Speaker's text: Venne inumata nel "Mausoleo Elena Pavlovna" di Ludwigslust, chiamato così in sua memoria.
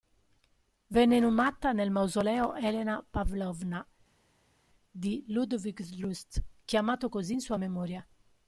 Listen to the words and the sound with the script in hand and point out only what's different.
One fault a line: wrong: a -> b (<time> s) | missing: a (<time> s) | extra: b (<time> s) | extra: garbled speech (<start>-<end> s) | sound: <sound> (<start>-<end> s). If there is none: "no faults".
no faults